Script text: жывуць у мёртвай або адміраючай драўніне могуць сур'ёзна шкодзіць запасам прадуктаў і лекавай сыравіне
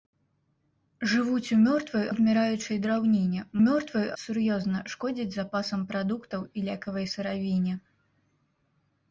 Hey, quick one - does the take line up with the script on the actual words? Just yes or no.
no